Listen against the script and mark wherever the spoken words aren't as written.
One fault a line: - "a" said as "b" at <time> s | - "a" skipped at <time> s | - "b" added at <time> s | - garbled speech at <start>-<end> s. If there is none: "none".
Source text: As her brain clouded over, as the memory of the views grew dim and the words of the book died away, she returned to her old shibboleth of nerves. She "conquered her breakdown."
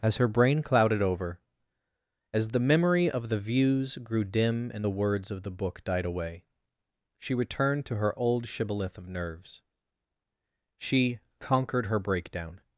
none